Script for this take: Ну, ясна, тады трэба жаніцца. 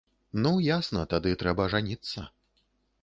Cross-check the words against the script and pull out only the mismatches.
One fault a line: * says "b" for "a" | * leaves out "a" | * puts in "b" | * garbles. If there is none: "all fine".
all fine